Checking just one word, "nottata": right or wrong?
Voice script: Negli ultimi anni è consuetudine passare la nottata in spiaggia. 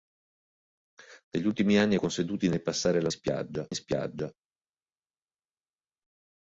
wrong